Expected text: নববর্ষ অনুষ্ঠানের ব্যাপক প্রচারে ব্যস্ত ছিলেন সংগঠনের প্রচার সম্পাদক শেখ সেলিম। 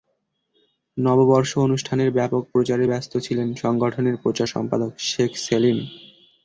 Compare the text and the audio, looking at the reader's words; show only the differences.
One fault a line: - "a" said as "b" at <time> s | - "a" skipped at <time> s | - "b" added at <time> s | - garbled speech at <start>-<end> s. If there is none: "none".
none